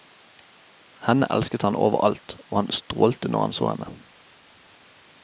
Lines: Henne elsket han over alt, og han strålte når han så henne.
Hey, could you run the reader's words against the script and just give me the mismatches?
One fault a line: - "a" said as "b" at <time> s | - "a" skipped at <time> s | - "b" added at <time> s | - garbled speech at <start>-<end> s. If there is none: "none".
none